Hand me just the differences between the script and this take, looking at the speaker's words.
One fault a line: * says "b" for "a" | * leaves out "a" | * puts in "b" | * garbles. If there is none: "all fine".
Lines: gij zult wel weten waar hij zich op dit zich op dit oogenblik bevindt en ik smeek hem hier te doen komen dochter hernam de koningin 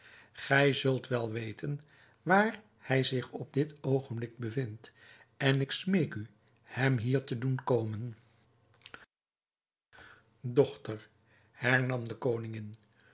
* leaves out "zich op dit"
* puts in "u"